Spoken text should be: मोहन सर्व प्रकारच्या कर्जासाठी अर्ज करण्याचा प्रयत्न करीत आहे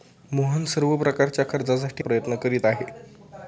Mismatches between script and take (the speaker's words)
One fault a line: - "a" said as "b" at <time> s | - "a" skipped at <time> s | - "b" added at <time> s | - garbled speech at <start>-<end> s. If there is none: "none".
- "अर्ज करण्याचा" skipped at 2.0 s